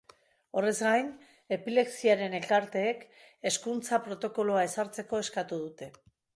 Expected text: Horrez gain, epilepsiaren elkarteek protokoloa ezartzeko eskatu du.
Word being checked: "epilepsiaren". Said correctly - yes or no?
yes